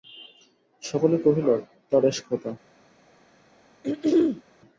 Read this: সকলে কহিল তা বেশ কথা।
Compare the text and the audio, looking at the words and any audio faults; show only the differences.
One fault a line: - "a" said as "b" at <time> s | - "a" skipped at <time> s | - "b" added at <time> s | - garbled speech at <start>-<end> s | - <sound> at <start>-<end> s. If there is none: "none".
- throat clearing at 3.8-4.4 s